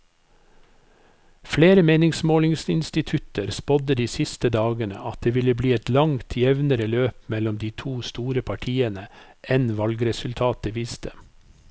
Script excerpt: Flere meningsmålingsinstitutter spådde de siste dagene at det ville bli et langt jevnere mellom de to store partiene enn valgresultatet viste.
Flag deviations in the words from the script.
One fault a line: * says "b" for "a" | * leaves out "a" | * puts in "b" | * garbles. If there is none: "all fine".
* puts in "løp"